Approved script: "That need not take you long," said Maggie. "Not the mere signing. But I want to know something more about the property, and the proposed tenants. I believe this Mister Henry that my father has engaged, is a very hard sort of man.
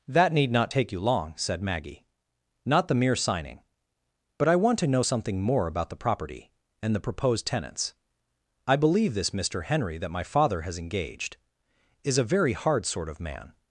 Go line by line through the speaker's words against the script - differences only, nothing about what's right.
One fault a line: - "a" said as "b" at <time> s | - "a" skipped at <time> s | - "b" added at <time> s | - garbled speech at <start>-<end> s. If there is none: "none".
none